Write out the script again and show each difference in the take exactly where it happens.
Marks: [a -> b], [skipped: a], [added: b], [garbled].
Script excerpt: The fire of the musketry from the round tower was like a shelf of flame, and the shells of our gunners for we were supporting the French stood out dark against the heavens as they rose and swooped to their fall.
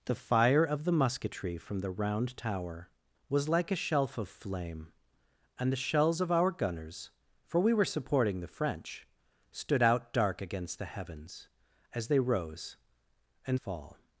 The fire of the musketry from the round tower was like a shelf of flame, and the shells of our gunners for we were supporting the French stood out dark against the heavens as they rose and [skipped: swooped to their] fall.